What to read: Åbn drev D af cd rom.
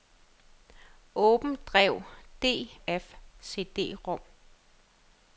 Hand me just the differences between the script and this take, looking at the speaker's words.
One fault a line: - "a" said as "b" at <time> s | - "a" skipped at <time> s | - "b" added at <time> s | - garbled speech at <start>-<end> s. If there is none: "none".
none